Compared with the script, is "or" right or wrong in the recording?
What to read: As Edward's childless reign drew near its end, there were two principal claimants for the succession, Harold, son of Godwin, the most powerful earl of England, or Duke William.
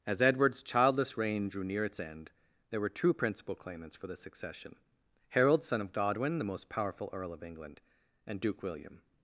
wrong